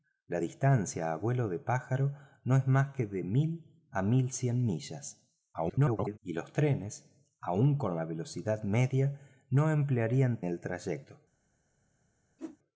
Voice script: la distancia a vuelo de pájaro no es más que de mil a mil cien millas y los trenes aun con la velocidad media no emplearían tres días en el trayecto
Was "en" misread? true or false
true